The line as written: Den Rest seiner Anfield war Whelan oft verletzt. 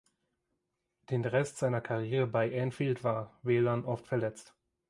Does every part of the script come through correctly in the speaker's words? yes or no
no